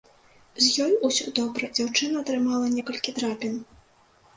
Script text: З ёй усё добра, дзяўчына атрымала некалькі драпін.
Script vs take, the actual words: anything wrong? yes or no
no